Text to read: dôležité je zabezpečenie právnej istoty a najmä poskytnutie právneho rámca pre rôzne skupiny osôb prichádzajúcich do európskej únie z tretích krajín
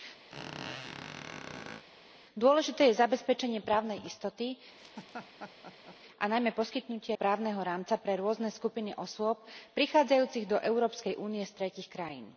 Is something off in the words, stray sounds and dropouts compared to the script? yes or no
yes